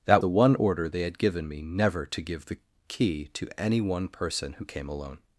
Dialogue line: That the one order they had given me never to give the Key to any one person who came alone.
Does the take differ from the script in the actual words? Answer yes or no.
no